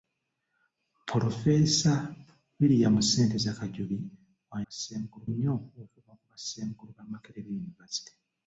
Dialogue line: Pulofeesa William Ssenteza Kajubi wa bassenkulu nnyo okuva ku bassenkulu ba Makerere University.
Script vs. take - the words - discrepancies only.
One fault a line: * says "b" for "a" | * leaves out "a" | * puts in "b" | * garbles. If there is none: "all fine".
all fine